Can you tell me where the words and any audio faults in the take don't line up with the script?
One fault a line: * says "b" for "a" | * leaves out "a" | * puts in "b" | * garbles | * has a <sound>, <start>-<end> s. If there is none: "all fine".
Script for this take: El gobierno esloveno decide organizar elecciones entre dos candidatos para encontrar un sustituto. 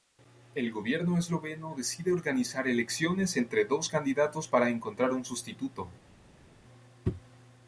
all fine